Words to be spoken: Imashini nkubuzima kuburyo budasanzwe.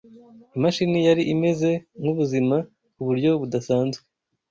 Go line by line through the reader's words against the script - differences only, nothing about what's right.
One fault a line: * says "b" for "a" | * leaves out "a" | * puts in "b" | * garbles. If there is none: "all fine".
* puts in "yari imeze"